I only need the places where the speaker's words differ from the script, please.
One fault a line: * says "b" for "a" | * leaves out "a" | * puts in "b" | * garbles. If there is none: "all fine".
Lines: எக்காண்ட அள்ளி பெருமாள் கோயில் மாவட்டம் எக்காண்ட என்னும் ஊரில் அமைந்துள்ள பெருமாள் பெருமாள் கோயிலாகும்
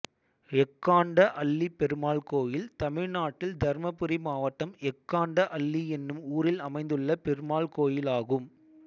* puts in "தமிழ்நாட்டில் தர்மபுரி"
* puts in "அள்ளி"
* leaves out "பெருமாள்"